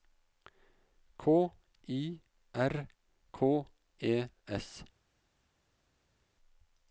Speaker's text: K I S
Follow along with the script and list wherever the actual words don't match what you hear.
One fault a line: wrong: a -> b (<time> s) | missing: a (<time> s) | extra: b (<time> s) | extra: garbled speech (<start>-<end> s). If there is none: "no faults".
extra: R K E (2.5 s)